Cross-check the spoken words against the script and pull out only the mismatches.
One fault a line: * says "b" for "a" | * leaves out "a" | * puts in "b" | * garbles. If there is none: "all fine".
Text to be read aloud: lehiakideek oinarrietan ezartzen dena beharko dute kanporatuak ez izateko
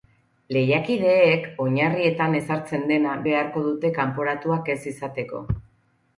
all fine